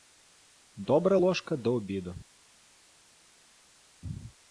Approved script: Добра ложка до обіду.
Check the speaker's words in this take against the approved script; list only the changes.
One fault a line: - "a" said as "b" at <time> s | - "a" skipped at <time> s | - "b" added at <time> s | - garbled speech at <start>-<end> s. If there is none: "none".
none